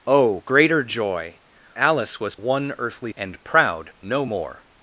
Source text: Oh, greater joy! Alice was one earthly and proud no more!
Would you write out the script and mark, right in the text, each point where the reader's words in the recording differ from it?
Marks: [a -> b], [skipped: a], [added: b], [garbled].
Oh, greater joy! Alice was one earthly and proud no more!